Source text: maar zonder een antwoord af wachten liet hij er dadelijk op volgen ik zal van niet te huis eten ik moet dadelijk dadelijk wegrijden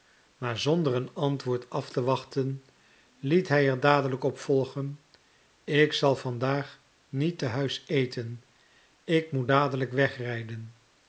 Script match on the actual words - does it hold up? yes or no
no